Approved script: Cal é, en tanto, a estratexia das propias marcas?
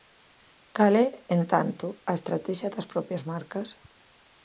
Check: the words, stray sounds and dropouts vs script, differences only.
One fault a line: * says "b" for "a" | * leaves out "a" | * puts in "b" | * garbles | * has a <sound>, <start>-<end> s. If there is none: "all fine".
all fine